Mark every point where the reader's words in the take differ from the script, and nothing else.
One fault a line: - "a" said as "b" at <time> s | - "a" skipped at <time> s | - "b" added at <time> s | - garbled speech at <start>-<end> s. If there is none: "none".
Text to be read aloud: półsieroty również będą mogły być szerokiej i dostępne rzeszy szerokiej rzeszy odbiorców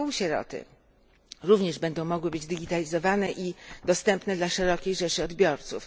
- "szerokiej" said as "digitalizowane" at 2.5 s
- "rzeszy" said as "dla" at 4.3 s